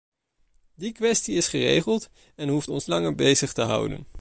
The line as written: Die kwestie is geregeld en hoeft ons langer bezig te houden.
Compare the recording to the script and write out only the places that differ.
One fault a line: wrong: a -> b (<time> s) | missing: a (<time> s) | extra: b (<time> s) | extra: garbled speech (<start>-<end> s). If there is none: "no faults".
no faults